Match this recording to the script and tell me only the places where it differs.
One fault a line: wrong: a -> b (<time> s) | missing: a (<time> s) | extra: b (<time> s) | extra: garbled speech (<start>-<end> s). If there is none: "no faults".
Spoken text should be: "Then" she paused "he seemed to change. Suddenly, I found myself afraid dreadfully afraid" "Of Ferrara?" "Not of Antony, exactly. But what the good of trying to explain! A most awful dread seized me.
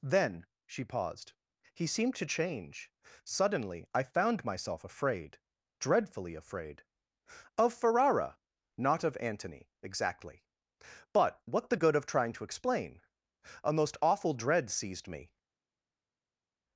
no faults